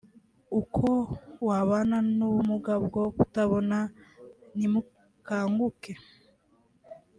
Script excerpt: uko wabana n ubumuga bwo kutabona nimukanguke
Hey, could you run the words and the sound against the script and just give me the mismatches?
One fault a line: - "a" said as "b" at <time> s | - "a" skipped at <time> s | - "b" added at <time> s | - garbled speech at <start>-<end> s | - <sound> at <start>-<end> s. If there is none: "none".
none